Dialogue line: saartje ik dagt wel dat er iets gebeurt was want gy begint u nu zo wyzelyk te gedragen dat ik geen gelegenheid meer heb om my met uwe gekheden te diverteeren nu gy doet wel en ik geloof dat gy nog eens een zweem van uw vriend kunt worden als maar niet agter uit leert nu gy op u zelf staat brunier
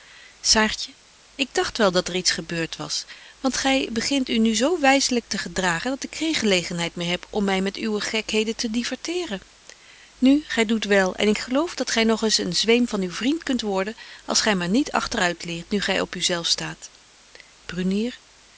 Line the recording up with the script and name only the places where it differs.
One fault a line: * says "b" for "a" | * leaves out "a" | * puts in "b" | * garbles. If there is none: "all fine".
* puts in "gy"